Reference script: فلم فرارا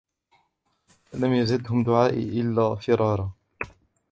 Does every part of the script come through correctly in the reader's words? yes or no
no